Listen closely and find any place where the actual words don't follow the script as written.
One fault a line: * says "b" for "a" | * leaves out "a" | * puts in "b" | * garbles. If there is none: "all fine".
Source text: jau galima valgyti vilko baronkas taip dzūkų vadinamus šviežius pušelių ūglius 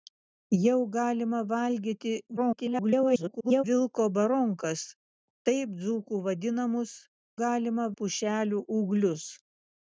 * garbles
* says "galima" for "šviežius"